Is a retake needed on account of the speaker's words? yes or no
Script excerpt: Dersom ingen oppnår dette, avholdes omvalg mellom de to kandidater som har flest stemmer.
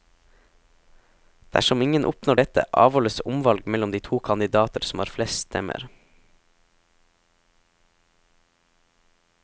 no